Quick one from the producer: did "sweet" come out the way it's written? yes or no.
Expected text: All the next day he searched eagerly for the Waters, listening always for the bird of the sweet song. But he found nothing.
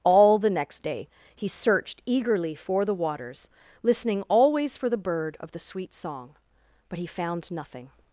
yes